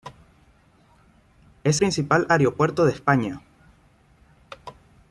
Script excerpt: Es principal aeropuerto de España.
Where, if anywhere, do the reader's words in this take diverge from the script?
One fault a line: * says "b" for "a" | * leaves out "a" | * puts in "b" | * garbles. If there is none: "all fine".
all fine